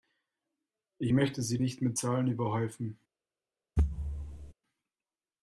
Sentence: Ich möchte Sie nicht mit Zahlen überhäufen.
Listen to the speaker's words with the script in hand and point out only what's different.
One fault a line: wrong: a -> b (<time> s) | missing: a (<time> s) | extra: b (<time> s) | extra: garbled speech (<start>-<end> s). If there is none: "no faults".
no faults